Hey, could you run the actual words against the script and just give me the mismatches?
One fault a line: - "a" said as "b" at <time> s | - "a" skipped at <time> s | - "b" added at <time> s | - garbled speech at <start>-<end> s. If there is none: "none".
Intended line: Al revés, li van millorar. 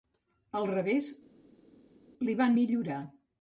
none